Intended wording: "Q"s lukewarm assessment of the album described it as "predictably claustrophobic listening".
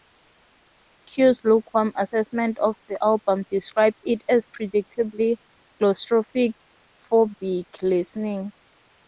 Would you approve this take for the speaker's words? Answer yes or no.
yes